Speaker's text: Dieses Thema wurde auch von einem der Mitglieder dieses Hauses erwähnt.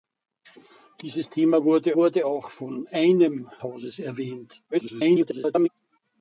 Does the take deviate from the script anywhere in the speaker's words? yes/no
yes